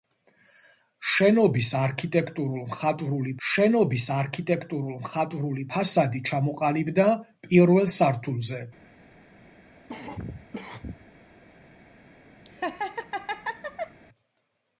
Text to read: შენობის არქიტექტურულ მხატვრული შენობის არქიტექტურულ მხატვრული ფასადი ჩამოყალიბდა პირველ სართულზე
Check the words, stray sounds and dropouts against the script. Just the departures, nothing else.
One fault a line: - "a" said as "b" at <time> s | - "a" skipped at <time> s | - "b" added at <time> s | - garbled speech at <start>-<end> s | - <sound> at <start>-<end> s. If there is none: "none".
- cough at 9.9-11.1 s
- laugh at 12.5-14.0 s